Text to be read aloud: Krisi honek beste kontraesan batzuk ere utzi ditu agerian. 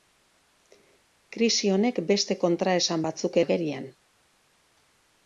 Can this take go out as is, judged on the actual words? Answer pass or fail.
fail